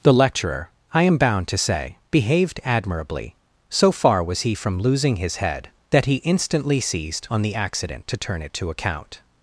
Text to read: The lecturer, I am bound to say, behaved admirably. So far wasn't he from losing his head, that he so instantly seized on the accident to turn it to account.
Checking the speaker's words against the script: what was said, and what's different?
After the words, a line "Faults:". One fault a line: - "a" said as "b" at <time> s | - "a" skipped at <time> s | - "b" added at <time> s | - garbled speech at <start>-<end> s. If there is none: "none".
The lecturer, I am bound to say, behaved admirably. So far was he from losing his head, that he instantly seized on the accident to turn it to account.
Faults:
- "wasn't" said as "was" at 4.2 s
- "so" skipped at 6.2 s